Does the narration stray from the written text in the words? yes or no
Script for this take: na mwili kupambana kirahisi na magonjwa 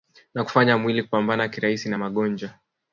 yes